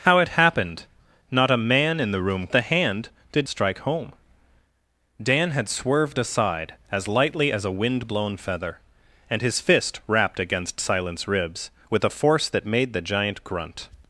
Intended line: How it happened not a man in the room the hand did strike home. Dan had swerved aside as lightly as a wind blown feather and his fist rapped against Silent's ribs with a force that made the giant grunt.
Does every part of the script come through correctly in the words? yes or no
yes